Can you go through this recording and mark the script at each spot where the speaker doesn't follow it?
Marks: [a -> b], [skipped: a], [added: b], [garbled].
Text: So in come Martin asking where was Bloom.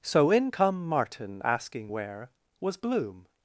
So in come Martin asking where was Bloom.